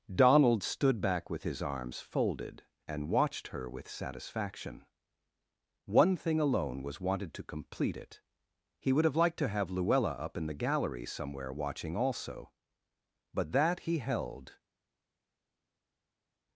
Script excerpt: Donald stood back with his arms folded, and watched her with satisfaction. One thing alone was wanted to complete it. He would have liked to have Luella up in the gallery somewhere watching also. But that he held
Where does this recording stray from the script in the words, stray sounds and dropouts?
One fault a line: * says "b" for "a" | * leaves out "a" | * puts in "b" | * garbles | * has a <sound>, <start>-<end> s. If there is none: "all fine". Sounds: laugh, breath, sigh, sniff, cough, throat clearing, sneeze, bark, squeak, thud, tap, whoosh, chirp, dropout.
all fine